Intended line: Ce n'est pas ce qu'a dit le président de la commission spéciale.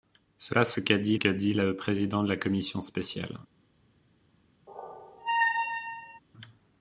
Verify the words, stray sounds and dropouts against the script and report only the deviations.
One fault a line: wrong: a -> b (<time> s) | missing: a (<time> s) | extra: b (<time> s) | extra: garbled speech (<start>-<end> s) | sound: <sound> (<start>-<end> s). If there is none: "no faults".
missing: n'est (0.6 s)
extra: qu'a dit (1.2 s)
sound: squeak (4.7-6.2 s)